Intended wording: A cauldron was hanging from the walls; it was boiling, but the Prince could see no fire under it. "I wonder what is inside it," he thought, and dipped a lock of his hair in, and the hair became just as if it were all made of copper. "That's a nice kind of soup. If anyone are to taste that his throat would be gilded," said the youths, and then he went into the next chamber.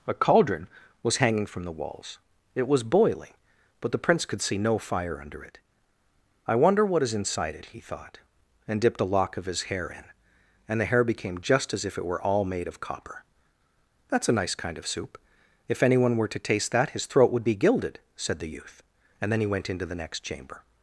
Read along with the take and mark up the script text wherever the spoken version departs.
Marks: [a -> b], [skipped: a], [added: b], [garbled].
A cauldron was hanging from the walls; it was boiling, but the Prince could see no fire under it. "I wonder what is inside it," he thought, and dipped a lock of his hair in, and the hair became just as if it were all made of copper. "That's a nice kind of soup. If anyone [are -> were] to taste that his throat would be gilded," said the [youths, -> youth] and then he went into the next chamber.